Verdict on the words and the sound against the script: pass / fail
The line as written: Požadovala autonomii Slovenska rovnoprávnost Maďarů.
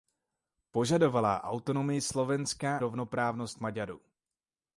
pass